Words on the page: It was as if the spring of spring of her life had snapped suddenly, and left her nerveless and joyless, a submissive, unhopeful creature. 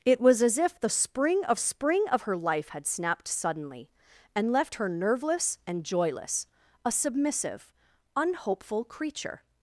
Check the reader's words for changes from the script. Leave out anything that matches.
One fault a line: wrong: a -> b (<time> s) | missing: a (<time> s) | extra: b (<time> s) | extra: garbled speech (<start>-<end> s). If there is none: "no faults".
no faults